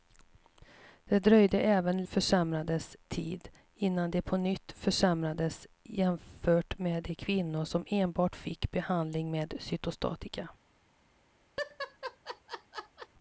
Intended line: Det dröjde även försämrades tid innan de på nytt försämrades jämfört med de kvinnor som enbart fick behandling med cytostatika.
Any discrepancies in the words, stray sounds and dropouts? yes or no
yes